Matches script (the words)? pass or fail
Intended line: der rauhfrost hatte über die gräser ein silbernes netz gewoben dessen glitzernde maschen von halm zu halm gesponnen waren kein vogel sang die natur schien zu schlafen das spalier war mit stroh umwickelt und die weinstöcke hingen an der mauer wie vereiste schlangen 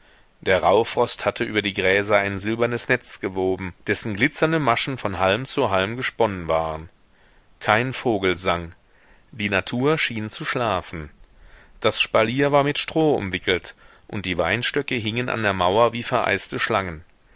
pass